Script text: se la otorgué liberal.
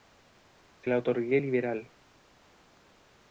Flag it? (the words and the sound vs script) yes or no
no